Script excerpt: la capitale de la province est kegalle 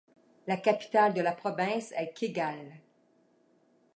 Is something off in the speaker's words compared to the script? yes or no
no